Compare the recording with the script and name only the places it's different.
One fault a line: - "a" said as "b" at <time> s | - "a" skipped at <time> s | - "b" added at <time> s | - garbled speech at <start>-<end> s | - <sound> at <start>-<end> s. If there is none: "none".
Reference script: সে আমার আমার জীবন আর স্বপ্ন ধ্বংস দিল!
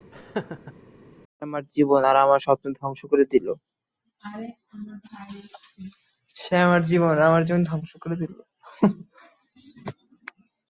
- laugh at 0.1-0.7 s
- "আমার" skipped at 1.6 s
- "আমার" added at 2.2 s
- "করে" added at 3.1 s